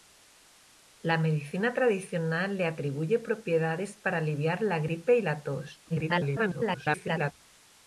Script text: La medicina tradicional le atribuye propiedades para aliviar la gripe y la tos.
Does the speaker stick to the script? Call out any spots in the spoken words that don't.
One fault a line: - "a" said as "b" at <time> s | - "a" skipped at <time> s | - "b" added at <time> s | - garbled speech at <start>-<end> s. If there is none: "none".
- garbled speech at 5.9-7.3 s